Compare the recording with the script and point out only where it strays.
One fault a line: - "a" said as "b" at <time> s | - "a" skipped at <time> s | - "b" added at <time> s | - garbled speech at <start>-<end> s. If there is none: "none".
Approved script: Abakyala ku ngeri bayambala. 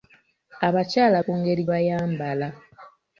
none